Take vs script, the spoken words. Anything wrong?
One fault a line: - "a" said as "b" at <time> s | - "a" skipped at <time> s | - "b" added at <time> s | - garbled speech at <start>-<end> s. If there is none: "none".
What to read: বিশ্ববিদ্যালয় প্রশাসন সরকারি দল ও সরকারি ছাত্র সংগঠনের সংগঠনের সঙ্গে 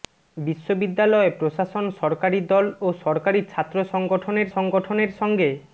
none